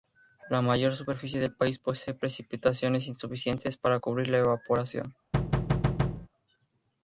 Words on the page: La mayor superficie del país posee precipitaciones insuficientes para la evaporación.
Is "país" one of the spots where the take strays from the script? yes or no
no